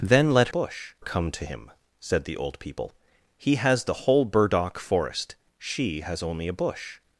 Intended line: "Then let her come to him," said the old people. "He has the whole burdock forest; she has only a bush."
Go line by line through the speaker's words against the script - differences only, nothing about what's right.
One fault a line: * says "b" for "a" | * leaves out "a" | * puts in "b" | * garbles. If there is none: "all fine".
* says "bush" for "her"